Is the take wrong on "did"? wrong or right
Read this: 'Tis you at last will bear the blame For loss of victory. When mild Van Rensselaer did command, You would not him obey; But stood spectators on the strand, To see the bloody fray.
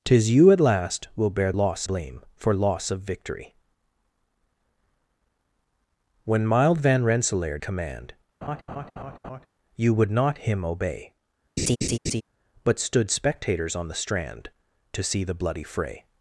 wrong